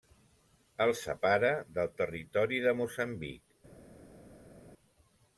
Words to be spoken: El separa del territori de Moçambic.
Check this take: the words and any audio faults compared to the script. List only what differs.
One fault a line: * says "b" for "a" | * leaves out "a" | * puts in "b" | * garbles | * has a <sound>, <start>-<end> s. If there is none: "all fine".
all fine